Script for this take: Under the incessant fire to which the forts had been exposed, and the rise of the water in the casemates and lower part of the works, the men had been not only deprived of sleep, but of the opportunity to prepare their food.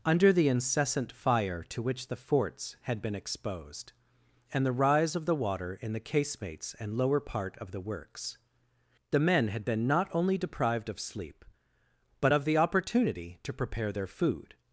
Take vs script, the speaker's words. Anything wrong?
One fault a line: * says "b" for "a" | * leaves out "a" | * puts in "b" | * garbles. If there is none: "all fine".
all fine